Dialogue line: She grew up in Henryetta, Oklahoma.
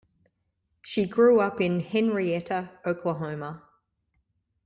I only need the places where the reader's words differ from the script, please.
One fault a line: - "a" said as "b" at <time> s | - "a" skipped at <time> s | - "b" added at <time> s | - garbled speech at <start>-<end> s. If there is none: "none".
none